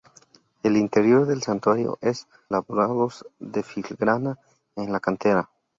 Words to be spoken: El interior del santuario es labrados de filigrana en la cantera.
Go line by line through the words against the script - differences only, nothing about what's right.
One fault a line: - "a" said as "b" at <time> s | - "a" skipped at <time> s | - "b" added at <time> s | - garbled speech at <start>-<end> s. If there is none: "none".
none